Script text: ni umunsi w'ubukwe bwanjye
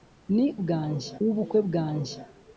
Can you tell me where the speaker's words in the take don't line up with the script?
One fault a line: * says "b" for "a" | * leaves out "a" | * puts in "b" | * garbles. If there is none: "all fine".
* says "bwanjye" for "umunsi"